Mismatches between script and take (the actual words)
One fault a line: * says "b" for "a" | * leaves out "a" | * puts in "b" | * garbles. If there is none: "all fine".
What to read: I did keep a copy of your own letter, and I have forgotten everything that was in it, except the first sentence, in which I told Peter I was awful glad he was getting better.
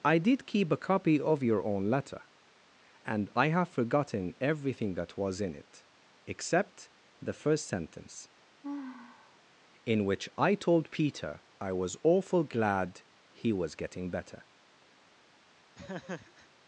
all fine